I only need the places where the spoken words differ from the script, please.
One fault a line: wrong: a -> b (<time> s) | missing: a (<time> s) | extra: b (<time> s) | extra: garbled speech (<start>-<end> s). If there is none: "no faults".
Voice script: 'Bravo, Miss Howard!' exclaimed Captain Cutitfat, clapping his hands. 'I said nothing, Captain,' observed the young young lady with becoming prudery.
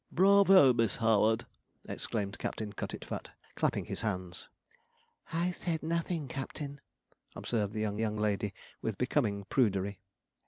no faults